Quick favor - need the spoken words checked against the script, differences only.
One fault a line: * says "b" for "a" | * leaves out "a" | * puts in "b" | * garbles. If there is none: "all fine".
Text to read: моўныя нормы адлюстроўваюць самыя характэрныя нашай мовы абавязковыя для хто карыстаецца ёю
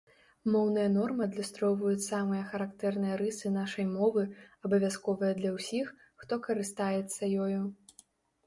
* puts in "рысы"
* puts in "ўсіх"